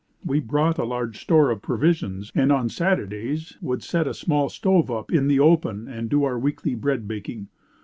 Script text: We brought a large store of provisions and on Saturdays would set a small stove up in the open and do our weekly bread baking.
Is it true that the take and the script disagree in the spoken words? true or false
false